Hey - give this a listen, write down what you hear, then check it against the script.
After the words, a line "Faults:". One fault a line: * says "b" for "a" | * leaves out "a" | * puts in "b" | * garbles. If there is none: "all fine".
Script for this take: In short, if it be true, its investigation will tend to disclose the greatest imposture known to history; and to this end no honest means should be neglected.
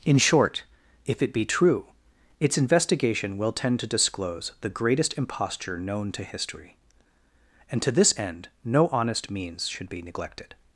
In short, if it be true, its investigation will tend to disclose the greatest imposture known to history; and to this end no honest means should be neglected.
Faults:
all fine